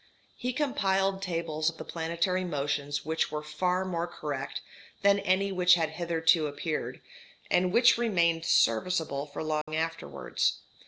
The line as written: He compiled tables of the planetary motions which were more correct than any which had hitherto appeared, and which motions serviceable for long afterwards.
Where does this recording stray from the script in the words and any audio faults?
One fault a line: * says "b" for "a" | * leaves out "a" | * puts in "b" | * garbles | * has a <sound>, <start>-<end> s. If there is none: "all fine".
* puts in "far"
* says "remained" for "motions"
* has a dropout, 9.6-9.7 s